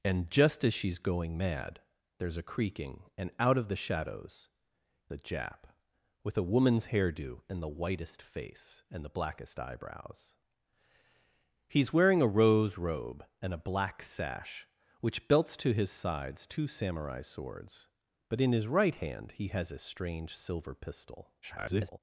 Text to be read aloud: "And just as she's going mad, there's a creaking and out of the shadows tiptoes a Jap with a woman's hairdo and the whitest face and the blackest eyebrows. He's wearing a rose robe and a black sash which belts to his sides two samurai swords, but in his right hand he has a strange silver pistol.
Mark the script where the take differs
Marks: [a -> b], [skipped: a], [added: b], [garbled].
"And just as she's going mad, there's a creaking and out of the shadows [skipped: tiptoes] a Jap with a woman's hairdo and the whitest face and the blackest eyebrows. He's wearing a rose robe and a black sash which belts to his sides two samurai swords, but in his right hand he has a strange silver pistol. [garbled]